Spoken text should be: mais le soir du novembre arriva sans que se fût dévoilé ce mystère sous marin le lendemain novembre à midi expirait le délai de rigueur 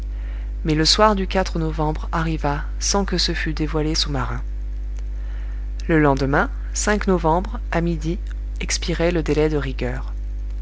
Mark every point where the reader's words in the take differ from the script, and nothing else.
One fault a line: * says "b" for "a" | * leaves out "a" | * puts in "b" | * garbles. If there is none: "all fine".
* leaves out "ce mystère"